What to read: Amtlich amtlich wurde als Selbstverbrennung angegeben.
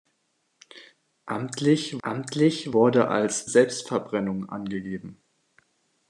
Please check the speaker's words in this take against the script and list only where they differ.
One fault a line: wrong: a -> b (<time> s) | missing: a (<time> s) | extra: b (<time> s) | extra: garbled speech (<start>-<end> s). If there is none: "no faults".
no faults